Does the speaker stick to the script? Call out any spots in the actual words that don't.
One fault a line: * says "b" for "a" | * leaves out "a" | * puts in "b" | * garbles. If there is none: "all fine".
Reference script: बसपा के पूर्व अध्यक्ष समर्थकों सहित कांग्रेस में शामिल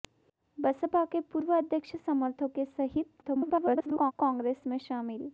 * garbles